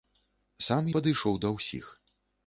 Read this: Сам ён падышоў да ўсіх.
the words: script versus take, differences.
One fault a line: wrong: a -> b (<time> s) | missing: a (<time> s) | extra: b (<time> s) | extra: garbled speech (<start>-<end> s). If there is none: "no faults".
missing: ён (0.9 s)